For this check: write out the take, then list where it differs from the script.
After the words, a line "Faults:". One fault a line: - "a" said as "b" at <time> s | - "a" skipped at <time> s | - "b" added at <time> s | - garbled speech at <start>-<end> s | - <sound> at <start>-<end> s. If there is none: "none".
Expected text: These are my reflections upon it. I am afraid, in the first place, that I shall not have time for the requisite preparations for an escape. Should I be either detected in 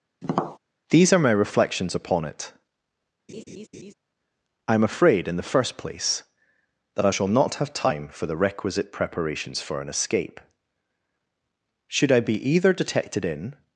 These are my reflections upon it. I am afraid, in the first place, that I shall not have time for the requisite preparations for an escape. Should I be either detected in
Faults:
- tap at 0.2-0.6 s
- laugh at 3.3-3.9 s